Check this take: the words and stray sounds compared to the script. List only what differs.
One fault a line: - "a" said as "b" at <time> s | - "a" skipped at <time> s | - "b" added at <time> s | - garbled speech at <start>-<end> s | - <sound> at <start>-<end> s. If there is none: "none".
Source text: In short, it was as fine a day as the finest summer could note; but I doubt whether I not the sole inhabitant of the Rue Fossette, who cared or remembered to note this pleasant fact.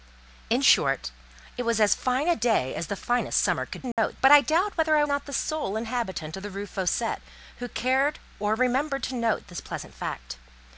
- dropout at 3.9-4.0 s